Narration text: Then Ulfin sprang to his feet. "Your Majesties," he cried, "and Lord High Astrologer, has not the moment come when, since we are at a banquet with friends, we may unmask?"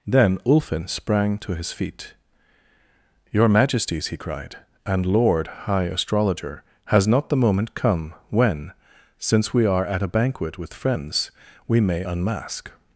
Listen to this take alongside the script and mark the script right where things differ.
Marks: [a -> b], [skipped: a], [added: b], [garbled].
Then Ulfin sprang to his feet. "Your Majesties," he cried, "and Lord High Astrologer, has not the moment come when, since we are at a banquet with friends, we may unmask?"